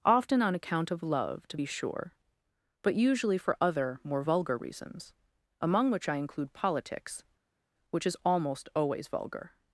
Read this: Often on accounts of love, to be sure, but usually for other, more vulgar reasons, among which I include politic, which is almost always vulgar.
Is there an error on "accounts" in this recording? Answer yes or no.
yes